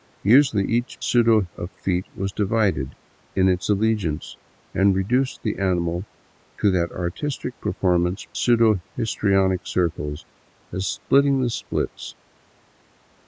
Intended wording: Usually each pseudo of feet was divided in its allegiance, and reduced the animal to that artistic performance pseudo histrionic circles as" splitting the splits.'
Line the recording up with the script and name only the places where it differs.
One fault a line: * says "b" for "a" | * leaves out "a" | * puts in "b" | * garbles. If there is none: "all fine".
all fine